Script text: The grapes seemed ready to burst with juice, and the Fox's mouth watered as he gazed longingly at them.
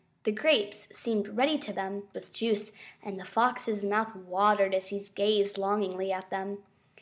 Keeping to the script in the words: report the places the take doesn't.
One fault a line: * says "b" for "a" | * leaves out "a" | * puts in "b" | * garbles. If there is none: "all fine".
* says "them" for "burst"